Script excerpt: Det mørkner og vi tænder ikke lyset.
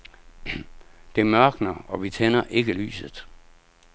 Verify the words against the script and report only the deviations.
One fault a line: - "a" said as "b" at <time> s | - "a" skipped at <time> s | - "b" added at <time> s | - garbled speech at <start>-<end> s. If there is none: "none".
none